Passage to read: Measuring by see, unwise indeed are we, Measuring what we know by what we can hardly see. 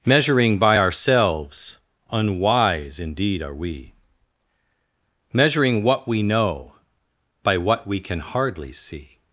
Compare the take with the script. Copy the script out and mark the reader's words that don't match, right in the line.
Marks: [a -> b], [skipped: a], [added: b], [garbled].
Measuring by [see, -> ourselves] unwise indeed are we, Measuring what we know by what we can hardly see.